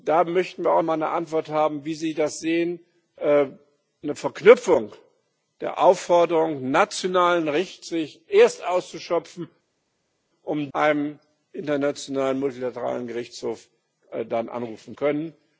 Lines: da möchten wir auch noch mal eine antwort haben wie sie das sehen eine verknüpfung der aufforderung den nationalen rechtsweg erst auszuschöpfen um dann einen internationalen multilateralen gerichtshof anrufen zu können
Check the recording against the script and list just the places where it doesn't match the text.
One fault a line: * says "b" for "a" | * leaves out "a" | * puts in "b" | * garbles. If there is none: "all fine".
* leaves out "noch"
* leaves out "dann"
* leaves out "zu"